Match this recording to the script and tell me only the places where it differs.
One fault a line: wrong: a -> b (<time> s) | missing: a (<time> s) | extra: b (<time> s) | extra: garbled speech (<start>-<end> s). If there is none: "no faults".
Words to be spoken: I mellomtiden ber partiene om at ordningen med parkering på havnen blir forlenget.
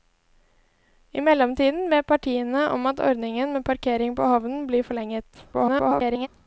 extra: garbled speech (5.5-6.3 s)